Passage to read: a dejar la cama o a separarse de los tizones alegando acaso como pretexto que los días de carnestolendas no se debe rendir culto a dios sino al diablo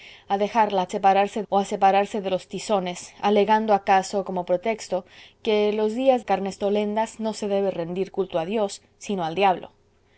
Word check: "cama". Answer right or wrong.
wrong